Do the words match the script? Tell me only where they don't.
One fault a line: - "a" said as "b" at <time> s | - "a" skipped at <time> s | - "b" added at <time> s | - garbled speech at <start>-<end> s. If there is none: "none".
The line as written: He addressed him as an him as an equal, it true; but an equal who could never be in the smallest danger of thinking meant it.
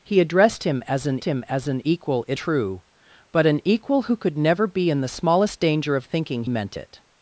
none